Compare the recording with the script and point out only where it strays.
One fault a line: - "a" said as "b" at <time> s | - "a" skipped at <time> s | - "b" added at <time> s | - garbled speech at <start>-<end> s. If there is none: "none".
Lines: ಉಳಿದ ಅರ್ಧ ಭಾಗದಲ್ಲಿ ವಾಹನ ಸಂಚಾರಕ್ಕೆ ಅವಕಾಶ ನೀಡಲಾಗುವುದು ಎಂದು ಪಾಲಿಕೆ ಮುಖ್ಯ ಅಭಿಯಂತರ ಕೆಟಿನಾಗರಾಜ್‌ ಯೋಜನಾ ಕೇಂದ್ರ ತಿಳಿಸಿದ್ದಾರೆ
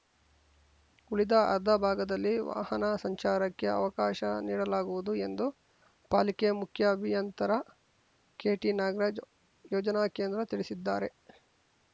none